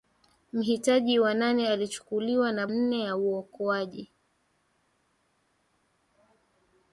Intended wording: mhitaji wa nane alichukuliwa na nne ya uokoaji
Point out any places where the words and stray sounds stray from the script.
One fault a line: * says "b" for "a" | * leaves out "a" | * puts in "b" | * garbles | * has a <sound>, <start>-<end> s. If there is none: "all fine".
all fine